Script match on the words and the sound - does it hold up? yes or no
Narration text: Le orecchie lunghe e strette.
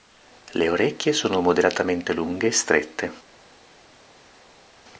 no